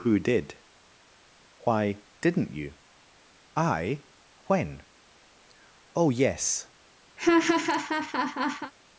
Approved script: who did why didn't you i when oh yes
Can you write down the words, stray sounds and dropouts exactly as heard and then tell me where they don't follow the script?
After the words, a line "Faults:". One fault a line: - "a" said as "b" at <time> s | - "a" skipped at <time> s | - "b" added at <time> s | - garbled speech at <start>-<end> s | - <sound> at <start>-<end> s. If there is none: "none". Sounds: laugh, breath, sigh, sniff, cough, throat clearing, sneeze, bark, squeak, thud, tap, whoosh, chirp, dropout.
who did why didn't you i when oh yes
Faults:
- laugh at 7.2-8.7 s